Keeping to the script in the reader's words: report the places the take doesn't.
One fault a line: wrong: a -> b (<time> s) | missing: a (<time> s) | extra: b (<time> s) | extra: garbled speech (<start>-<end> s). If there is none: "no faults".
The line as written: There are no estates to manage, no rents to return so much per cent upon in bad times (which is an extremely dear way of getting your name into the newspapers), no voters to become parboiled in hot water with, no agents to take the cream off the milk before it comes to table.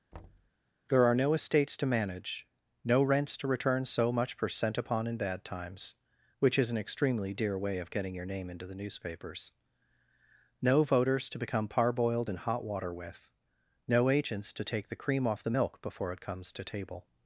no faults